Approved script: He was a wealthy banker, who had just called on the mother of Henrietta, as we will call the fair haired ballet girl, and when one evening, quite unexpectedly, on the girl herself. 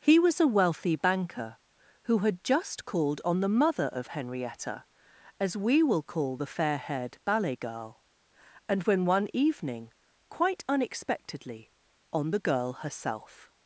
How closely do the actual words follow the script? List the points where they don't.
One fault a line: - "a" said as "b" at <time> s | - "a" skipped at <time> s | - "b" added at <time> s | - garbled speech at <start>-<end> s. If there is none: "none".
none